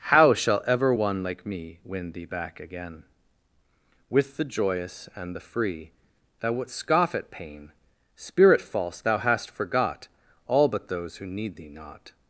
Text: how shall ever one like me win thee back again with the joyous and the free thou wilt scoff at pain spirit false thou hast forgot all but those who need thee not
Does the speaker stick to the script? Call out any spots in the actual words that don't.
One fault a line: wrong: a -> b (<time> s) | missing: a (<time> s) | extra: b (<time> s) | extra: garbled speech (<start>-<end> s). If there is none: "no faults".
wrong: wilt -> wouldst (6.5 s)